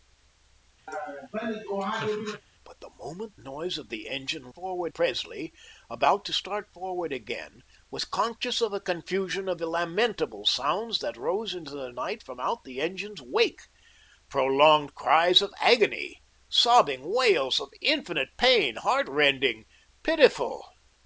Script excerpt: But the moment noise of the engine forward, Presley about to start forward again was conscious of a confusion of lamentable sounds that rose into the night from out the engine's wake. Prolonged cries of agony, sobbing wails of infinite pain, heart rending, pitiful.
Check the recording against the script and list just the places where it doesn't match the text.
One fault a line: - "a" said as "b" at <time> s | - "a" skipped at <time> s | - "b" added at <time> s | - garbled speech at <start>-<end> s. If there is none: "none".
none